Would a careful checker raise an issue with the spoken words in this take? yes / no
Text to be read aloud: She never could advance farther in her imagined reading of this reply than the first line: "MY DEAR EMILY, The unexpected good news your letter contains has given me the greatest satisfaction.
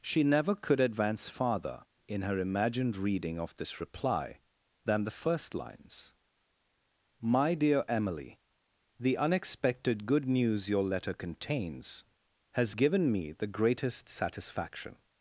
yes